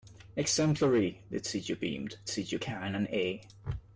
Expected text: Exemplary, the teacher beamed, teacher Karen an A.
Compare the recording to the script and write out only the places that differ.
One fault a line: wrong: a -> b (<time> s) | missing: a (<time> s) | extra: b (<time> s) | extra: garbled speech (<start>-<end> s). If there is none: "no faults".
no faults